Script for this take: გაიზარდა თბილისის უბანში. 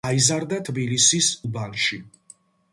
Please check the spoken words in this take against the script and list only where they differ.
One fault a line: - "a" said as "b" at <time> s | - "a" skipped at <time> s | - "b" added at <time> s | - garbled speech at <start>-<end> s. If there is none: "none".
none